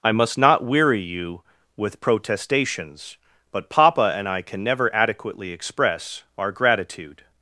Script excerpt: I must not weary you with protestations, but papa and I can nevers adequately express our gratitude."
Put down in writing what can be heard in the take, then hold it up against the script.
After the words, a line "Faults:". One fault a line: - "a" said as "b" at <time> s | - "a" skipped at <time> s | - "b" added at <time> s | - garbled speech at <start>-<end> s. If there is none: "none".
I must not weary you with protestations, but papa and I can never adequately express our gratitude."
Faults:
- "nevers" said as "never" at 4.6 s